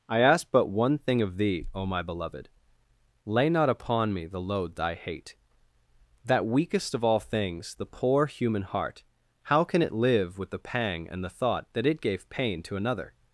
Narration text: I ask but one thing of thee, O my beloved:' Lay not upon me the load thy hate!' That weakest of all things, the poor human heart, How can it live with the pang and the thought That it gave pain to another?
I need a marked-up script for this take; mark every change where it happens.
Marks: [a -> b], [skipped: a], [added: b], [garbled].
I ask but one thing of thee, O my beloved:' Lay not upon me the load thy hate!' That weakest of all things, the poor human heart, How can it live with the pang and the thought That it gave pain to another?